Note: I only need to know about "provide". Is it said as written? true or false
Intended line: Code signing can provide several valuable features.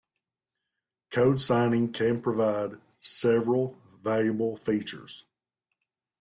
true